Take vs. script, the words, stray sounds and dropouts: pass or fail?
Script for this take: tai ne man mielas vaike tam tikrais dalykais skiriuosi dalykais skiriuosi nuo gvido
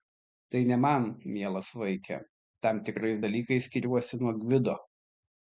fail